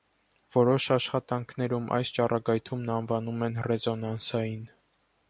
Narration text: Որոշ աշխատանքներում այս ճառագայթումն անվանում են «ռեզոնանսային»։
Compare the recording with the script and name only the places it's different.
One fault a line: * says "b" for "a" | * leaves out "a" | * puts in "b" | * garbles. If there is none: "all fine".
all fine